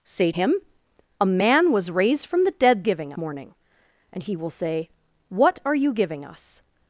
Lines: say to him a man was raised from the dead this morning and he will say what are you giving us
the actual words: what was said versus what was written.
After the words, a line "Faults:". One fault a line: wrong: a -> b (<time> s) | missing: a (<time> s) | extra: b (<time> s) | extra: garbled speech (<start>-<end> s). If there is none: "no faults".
say him a man was raised from the dead giving morning and he will say what are you giving us
Faults:
missing: to (0.3 s)
wrong: this -> giving (2.8 s)